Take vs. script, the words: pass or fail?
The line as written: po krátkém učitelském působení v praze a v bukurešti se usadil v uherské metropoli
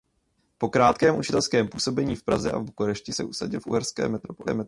pass